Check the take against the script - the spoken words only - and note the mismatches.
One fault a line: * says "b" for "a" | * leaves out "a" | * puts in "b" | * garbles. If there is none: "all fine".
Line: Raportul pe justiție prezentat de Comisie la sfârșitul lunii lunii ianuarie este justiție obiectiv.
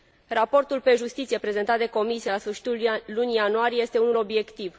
* leaves out "lunii"
* says "unul" for "justiție"